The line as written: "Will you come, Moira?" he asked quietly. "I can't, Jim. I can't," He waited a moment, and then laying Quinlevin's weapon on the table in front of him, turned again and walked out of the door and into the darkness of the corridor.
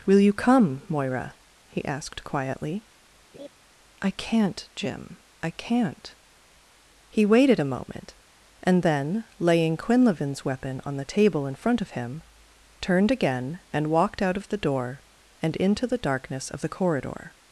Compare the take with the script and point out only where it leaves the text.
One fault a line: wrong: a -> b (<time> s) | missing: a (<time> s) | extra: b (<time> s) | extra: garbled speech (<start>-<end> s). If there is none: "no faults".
no faults